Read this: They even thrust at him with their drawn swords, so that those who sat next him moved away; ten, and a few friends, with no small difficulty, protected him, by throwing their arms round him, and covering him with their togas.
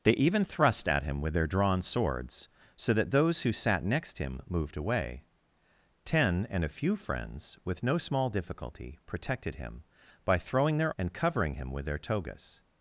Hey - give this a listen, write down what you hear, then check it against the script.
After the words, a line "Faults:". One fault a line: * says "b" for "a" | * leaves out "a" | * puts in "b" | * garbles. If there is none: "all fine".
They even thrust at him with their drawn swords, so that those who sat next him moved away; ten, and a few friends, with no small difficulty, protected him, by throwing their and covering him with their togas.
Faults:
* leaves out "arms round him"